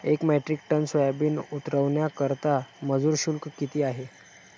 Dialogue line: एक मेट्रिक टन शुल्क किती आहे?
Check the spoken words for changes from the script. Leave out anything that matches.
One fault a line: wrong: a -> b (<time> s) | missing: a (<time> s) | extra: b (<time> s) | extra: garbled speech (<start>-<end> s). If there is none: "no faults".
extra: सोयाबीन उतरवण्याकरता मजूर (0.8 s)